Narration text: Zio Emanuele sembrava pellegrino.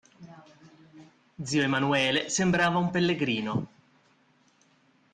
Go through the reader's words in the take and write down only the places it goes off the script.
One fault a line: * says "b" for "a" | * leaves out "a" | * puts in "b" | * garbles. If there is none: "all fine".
* puts in "un"